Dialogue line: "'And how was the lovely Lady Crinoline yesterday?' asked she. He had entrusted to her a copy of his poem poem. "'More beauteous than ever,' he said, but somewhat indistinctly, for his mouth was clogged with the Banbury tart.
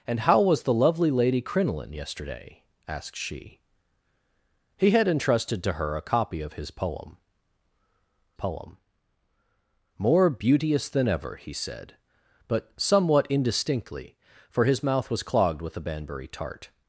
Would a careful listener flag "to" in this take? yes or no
no